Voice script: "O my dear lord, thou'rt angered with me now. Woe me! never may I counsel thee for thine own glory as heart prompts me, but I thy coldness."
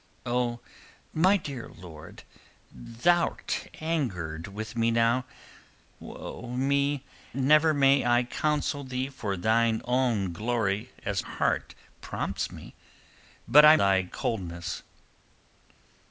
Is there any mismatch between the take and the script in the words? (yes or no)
no